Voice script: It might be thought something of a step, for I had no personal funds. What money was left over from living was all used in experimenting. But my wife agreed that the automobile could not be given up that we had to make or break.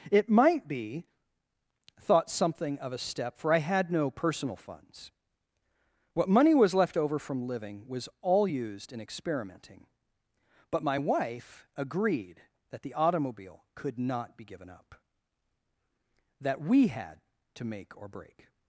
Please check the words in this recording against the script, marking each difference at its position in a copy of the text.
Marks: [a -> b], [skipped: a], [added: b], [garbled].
It might be thought something of a step, for I had no personal funds. What money was left over from living was all used in experimenting. But my wife agreed that the automobile could not be given up that we had to make or break.